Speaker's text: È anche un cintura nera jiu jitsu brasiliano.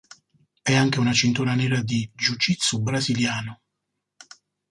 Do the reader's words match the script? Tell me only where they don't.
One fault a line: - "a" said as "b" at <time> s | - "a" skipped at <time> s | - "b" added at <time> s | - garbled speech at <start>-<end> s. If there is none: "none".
- "un" said as "una" at 1.0 s
- "di" added at 1.8 s